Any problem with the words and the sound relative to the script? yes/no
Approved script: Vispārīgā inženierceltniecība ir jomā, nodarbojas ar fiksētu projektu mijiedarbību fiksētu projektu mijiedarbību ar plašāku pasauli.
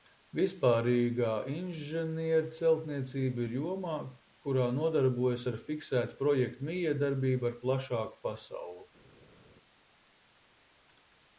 yes